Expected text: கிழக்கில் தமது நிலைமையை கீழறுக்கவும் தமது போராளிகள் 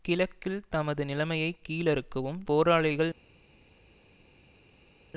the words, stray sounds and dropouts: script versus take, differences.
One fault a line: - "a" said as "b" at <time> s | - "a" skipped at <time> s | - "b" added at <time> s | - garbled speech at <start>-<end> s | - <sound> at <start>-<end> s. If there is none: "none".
- "தமது" skipped at 2.4 s